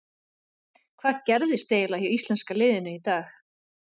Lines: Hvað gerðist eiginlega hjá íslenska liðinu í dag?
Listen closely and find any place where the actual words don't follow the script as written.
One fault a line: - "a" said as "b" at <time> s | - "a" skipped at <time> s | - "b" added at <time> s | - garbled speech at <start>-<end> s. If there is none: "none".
none